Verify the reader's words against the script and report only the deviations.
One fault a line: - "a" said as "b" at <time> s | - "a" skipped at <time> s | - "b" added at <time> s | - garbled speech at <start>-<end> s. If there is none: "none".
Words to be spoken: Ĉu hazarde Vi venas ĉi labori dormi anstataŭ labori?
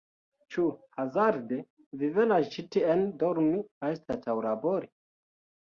- "labori" said as "tien" at 2.8 s